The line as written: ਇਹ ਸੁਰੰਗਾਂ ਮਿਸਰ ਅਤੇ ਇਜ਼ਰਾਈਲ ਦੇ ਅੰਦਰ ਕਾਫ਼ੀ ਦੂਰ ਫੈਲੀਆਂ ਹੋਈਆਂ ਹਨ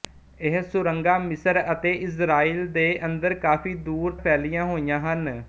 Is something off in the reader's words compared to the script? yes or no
no